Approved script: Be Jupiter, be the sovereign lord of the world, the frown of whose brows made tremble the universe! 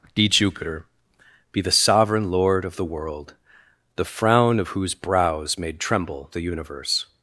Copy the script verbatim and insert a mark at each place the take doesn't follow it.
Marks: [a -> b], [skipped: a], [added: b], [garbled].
Be Jupiter, be the sovereign lord of the world, the frown of whose brows made tremble the universe!